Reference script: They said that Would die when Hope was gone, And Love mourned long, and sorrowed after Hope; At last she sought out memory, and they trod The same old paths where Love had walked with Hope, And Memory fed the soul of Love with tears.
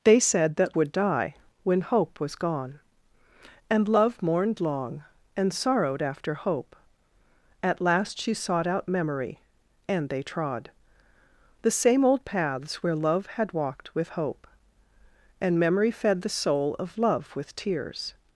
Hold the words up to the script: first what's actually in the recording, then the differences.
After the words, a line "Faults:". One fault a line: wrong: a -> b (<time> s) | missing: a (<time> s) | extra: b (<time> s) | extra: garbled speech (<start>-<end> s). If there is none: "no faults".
They said that Would die when Hope was gone, And Love mourned long, and sorrowed after Hope; At last she sought out memory, and they trod The same old paths where Love had walked with Hope, And Memory fed the soul of Love with tears.
Faults:
no faults